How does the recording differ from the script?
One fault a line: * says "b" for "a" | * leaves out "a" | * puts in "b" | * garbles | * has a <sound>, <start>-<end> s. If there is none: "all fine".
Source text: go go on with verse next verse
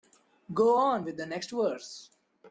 * leaves out "go"
* says "the" for "verse"